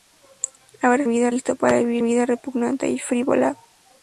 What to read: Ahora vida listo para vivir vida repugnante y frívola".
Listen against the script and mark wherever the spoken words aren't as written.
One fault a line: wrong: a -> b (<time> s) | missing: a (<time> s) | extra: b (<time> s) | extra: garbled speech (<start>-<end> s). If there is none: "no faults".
no faults